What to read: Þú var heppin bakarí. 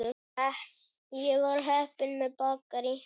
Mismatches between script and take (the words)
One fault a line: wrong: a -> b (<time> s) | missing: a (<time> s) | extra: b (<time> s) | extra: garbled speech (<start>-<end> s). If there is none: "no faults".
wrong: Þú -> Ég (1.2 s)
extra: með (2.2 s)